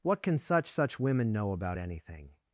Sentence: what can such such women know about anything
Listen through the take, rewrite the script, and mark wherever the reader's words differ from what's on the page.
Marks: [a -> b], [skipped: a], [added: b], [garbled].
what can such such women know about anything